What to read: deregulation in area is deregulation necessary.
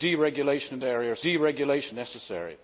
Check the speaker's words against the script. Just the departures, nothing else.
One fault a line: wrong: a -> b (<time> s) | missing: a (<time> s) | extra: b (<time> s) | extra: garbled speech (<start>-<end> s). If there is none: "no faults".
no faults